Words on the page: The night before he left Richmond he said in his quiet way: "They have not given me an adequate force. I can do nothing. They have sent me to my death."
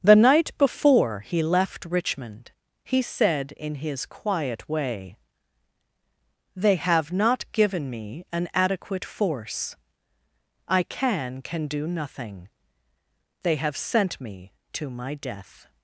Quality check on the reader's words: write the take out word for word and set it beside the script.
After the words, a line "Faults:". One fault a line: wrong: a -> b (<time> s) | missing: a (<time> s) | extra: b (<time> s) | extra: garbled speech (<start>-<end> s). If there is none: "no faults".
The night before he left Richmond he said in his quiet way: "They have not given me an adequate force. I can can do nothing. They have sent me to my death."
Faults:
extra: can (11.4 s)